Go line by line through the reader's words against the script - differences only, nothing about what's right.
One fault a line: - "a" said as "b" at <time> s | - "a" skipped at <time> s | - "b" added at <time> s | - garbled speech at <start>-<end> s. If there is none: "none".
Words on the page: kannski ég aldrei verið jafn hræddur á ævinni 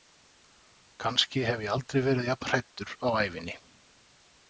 - "hef" added at 1.5 s